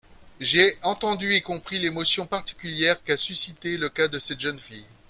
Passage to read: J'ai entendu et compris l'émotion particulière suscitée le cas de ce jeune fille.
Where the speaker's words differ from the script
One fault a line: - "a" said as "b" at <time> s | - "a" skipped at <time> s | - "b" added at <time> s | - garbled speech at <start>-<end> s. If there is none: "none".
- "qu'a" added at 3.0 s
- "ce" said as "cette" at 4.2 s